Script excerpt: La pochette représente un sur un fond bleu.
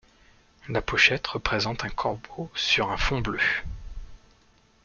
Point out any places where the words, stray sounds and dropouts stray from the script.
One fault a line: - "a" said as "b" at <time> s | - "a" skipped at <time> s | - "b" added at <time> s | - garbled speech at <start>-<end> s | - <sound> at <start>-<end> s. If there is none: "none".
- "corbeau" added at 1.9 s